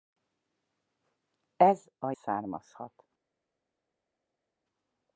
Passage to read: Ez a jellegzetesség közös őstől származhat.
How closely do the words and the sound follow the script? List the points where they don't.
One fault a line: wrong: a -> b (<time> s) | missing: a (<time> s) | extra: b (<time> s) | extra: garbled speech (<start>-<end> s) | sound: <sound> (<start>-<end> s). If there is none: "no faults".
missing: jellegzetesség közös őstől (2.1 s)